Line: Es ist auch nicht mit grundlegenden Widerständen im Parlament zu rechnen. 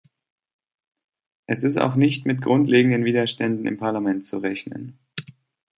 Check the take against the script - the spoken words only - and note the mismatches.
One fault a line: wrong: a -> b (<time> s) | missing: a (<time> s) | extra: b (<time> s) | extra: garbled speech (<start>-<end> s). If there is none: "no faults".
no faults